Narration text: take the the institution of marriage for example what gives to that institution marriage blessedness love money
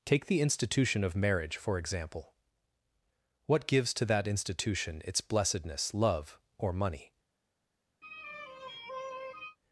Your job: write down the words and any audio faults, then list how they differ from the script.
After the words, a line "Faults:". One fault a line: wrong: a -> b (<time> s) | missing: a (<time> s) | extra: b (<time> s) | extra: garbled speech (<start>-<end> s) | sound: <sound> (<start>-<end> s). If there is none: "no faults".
take the institution of marriage for example what gives to that institution its blessedness love or money
Faults:
missing: the (0.4 s)
wrong: marriage -> its (5.0 s)
extra: or (6.6 s)
sound: sigh (8.0-9.6 s)